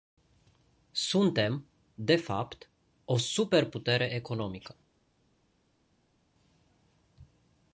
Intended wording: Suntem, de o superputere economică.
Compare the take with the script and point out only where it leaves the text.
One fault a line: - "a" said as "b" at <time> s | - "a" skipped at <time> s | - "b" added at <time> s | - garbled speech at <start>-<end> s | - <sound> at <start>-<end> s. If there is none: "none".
- "fapt" added at 2.1 s